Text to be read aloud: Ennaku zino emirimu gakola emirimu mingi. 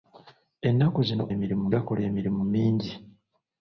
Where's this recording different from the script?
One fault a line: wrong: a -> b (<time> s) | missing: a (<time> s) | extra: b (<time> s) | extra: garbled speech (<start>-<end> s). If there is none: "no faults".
no faults